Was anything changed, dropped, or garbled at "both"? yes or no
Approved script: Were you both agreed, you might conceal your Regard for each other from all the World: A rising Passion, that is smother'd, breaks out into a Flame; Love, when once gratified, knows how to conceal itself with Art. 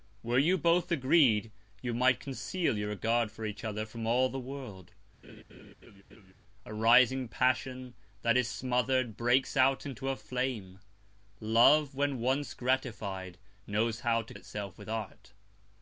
no